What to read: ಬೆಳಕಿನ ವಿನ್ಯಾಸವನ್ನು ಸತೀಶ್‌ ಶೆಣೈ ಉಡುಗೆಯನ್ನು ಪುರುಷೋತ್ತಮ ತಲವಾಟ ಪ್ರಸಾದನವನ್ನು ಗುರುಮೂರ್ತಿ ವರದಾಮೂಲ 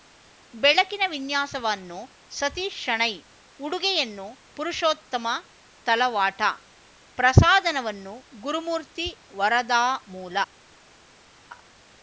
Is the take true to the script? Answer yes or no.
yes